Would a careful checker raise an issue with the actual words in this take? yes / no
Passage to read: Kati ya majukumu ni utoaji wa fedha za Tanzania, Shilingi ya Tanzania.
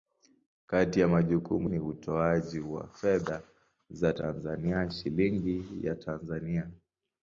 no